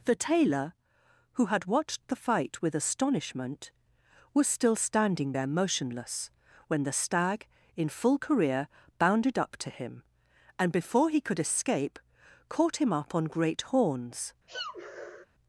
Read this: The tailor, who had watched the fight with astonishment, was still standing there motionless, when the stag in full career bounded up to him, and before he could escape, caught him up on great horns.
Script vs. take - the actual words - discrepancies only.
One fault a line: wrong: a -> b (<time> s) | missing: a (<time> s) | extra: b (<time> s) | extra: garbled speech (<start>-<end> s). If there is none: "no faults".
no faults